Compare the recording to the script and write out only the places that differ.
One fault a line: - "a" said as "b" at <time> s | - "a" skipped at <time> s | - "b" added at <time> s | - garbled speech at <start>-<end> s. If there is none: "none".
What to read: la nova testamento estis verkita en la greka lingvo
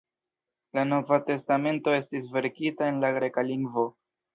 none